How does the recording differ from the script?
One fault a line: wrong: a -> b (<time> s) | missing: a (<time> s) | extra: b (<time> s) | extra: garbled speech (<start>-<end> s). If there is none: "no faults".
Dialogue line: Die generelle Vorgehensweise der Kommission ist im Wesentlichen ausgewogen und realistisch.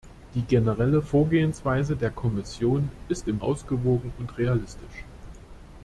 missing: Wesentlichen (3.4 s)